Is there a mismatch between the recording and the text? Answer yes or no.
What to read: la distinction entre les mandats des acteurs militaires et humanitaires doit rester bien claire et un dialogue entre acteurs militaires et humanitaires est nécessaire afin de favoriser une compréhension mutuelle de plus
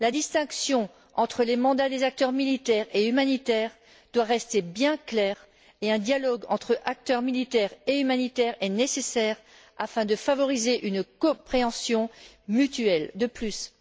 no